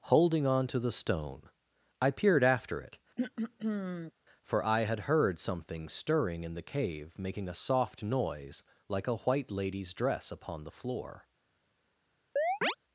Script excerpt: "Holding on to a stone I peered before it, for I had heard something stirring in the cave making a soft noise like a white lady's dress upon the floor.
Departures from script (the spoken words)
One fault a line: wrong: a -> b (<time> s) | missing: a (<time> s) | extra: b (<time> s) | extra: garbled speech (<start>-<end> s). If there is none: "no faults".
wrong: a -> the (0.8 s)
wrong: before -> after (2.4 s)